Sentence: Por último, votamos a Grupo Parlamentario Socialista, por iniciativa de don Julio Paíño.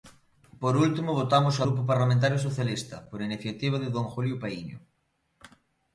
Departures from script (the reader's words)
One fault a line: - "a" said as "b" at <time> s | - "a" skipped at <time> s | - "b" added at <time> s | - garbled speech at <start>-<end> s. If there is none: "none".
none